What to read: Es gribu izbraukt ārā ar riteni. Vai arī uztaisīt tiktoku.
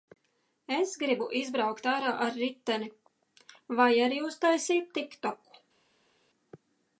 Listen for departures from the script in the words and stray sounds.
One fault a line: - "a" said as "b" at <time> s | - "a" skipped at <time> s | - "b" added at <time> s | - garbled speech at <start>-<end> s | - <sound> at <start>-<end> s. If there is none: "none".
none